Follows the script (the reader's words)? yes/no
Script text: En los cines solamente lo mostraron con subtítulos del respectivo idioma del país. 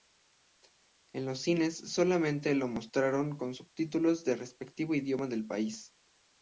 yes